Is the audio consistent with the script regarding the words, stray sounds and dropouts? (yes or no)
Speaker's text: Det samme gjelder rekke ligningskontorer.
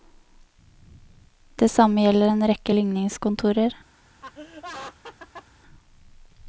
no